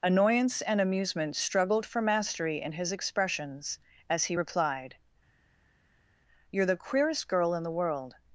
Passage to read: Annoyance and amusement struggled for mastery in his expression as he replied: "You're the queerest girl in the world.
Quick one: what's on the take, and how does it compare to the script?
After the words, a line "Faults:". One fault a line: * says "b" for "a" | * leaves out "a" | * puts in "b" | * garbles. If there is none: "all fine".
Annoyance and amusement struggled for mastery in his expressions as he replied: "You're the queerest girl in the world.
Faults:
* says "expressions" for "expression"